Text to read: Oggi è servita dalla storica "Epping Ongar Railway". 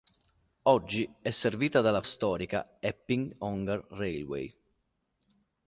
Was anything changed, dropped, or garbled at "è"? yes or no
no